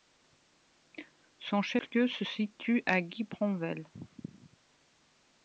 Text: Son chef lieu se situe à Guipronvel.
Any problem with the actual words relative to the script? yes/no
no